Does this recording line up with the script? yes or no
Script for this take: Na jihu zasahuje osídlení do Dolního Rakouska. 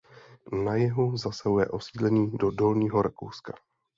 yes